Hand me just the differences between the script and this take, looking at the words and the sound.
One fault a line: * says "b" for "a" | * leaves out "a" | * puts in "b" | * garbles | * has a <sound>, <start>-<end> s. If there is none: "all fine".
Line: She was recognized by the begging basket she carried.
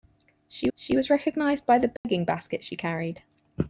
* puts in "she"
* has a dropout, 2.0-2.0 s